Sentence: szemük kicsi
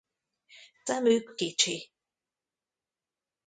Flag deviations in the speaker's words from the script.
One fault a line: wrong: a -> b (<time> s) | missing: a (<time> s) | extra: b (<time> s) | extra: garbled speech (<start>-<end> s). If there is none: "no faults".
no faults